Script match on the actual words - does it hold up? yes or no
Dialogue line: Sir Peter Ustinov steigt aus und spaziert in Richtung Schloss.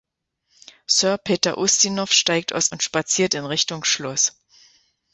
yes